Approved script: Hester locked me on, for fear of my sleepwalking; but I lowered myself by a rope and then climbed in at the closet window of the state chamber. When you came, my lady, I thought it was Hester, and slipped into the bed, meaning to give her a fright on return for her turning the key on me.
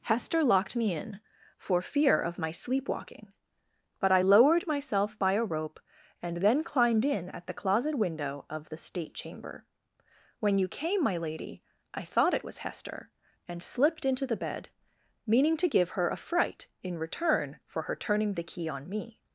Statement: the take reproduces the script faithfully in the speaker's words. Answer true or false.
false